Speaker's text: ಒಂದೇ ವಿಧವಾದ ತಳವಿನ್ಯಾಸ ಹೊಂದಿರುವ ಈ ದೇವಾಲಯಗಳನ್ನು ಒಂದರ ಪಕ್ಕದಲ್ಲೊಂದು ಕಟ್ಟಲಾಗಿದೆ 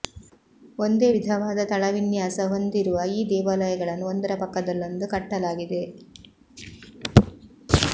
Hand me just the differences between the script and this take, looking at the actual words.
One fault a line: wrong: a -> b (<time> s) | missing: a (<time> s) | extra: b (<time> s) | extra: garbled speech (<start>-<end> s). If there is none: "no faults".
no faults